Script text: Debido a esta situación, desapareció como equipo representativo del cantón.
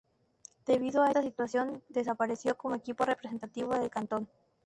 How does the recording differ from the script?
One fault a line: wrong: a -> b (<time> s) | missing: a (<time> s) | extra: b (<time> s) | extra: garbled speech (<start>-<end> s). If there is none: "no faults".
no faults